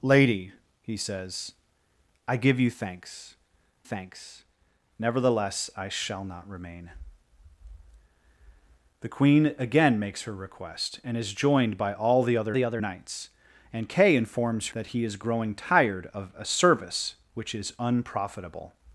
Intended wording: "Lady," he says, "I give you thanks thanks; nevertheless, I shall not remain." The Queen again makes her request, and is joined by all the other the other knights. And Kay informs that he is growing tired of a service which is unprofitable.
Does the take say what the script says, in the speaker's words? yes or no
yes